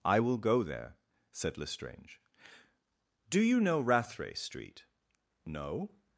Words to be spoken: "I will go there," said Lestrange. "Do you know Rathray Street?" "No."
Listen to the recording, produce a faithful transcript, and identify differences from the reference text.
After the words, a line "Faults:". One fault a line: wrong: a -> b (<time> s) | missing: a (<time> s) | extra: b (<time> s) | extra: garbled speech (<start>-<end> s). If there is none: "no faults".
"I will go there," said Lestrange. "Do you know Rathray Street?" "No."
Faults:
no faults